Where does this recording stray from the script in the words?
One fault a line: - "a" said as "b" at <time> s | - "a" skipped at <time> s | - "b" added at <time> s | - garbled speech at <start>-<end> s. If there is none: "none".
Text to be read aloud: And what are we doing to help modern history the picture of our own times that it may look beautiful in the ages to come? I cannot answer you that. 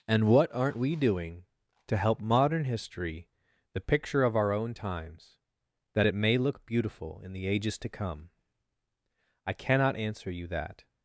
- "are" said as "aren't" at 0.5 s